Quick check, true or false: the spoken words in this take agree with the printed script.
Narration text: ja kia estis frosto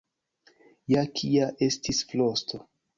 true